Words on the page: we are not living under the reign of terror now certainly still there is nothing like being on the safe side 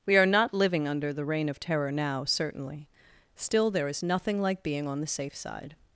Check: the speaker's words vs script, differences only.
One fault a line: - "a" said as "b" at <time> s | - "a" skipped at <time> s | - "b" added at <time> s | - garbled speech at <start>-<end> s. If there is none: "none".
none